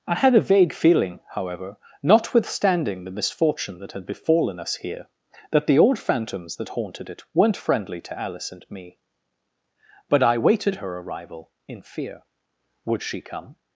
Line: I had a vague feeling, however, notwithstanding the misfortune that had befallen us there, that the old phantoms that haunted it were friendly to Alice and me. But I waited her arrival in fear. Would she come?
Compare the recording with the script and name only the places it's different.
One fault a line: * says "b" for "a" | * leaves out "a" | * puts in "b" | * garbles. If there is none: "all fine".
* says "here" for "there"
* says "weren't" for "were"